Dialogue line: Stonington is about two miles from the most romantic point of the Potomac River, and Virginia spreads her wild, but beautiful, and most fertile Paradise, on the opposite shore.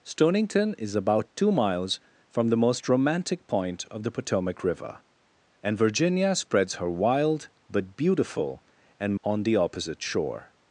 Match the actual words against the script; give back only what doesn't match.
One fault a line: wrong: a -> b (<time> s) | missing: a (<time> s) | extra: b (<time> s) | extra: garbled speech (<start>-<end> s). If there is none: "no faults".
missing: most fertile Paradise (9.2 s)